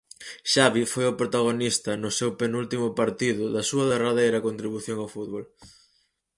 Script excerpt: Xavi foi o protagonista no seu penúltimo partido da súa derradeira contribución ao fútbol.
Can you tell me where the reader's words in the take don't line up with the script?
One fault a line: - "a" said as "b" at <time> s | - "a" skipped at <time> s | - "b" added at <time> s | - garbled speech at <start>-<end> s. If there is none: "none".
none